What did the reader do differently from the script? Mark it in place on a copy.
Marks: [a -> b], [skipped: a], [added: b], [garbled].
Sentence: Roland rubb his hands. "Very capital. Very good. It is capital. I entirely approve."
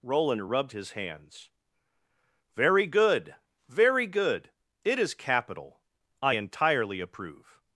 Roland [rubb -> rubbed] his hands. "Very [capital. -> good] Very good. It is capital. I entirely approve."